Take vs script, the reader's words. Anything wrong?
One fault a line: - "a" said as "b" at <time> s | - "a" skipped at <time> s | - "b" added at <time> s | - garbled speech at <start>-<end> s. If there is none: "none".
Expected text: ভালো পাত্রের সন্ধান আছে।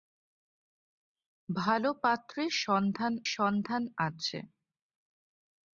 - "সন্ধান" added at 3.3 s